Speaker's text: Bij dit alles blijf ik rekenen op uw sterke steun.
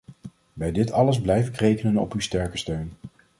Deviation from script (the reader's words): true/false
false